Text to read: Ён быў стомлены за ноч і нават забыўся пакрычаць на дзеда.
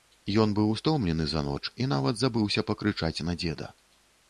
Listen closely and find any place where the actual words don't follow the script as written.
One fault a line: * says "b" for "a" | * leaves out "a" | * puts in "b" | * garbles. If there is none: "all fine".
all fine